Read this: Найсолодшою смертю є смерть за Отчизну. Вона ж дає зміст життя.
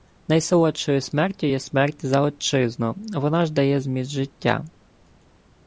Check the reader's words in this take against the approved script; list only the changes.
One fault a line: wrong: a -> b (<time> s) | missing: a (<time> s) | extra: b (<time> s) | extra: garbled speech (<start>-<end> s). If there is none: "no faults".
no faults